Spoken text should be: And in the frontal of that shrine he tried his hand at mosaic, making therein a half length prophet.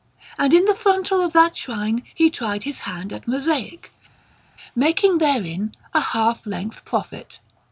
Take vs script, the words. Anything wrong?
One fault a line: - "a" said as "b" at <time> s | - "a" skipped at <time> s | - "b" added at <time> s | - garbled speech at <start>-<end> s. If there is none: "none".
none